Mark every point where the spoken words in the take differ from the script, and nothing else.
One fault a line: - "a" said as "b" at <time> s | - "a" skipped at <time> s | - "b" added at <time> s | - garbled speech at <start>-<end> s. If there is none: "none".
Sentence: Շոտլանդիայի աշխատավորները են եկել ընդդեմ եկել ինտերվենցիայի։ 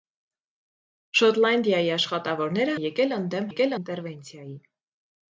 none